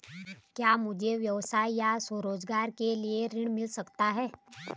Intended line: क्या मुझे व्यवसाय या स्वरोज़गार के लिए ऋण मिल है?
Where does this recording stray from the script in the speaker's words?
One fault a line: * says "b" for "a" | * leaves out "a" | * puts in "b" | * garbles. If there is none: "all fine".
* puts in "सकता"